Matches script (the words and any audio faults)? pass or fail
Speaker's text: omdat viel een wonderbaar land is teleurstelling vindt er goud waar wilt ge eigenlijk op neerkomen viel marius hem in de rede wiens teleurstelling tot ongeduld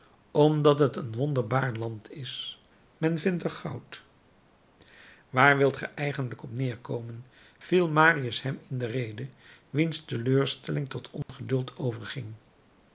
fail